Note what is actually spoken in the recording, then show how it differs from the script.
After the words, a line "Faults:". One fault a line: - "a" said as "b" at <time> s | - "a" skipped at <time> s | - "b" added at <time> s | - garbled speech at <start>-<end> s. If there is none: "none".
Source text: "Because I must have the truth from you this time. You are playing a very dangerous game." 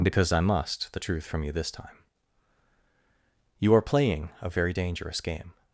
"Because I must the truth from you this time. You are playing a very dangerous game."
Faults:
- "have" skipped at 0.9 s